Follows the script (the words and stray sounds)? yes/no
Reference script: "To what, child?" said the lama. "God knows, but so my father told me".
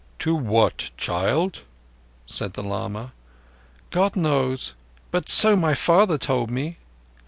yes